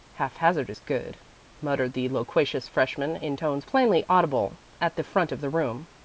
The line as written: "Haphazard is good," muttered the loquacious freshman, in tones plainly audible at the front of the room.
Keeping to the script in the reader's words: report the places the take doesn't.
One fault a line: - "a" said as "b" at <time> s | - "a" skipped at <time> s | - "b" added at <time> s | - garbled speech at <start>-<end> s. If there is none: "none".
none